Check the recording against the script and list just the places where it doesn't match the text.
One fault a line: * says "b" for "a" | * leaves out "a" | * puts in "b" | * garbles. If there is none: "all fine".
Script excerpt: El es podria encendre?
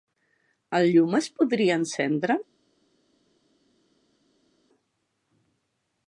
* puts in "llum"